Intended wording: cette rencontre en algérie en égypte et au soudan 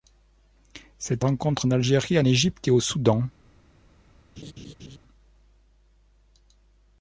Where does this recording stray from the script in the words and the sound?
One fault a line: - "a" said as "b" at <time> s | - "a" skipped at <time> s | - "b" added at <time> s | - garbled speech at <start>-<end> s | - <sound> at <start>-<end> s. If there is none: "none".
- laugh at 4.4-5.0 s